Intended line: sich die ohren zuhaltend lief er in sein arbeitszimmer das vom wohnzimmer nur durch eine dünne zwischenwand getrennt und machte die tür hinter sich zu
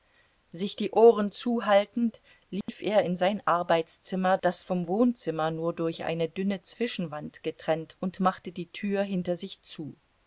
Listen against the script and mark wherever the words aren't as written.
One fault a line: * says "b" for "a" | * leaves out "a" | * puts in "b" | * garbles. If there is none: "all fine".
all fine